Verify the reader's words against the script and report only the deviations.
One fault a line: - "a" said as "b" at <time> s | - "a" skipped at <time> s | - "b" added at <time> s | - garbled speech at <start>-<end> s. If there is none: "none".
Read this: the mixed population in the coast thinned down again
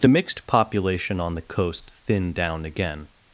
- "in" said as "on" at 1.2 s